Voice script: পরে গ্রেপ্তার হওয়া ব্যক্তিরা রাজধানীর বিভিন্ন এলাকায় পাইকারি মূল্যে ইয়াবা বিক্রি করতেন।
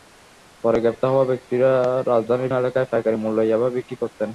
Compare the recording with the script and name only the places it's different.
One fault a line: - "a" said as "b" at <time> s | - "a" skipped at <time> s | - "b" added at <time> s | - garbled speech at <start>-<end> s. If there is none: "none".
- "বিভিন্ন" skipped at 2.5 s